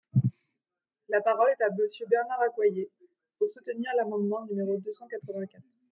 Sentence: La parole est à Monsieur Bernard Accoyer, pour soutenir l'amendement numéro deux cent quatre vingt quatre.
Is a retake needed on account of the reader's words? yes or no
no